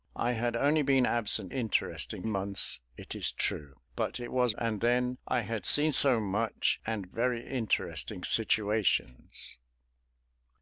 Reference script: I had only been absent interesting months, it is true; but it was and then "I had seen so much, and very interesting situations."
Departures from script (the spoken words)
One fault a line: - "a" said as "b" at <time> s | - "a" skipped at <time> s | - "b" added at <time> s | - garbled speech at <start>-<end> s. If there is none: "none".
none